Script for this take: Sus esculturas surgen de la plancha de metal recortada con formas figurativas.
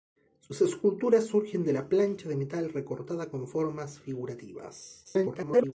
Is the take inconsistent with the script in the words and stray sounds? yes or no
yes